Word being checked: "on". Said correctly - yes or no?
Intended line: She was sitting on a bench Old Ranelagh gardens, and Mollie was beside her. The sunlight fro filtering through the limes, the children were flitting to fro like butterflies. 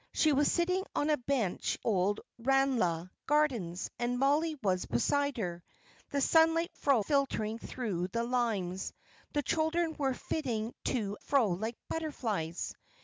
yes